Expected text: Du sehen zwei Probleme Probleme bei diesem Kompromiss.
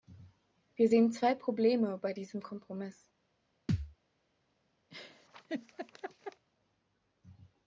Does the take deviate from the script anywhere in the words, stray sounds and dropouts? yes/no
yes